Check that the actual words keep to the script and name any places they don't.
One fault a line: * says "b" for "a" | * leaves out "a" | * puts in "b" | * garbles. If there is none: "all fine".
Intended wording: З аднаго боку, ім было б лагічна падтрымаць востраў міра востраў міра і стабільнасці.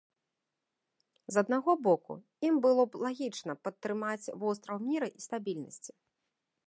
* leaves out "востраў міра"